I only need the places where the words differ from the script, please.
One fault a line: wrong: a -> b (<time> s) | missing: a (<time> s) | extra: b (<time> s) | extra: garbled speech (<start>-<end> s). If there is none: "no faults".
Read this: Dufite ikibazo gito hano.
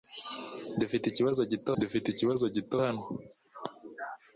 extra: dufite ikibazo gito (1.8 s)